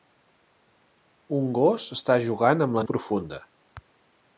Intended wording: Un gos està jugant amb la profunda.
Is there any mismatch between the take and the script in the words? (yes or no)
no